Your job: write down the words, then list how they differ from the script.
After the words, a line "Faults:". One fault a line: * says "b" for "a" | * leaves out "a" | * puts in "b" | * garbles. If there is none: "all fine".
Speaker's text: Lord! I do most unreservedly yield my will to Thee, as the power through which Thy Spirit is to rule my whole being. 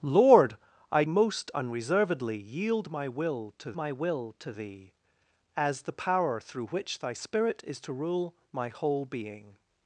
Lord! I most unreservedly yield my will to my will to Thee, as the power through which Thy Spirit is to rule my whole being.
Faults:
* leaves out "do"
* puts in "my will to"